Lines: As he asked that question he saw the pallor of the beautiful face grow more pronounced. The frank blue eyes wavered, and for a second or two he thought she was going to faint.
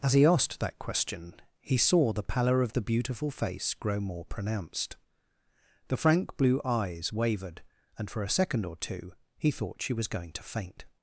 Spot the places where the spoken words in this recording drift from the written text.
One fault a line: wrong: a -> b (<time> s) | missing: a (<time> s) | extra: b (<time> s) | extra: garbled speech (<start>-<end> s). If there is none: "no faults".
no faults